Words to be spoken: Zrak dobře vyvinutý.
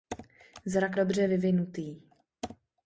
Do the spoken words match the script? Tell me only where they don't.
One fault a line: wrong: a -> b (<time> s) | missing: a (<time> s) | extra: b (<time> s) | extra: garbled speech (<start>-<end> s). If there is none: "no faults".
no faults